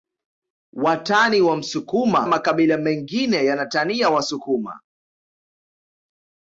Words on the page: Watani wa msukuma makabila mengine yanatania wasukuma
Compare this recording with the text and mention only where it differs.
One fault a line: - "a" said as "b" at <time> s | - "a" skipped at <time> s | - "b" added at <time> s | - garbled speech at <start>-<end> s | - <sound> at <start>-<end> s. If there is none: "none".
none